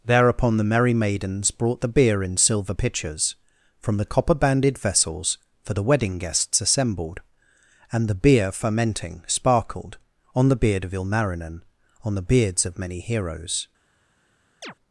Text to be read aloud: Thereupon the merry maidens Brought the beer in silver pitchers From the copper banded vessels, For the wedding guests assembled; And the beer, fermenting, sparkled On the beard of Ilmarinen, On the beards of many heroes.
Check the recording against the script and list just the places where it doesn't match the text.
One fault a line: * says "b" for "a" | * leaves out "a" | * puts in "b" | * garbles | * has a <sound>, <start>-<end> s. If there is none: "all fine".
* has a chirp, 14.6-14.7 s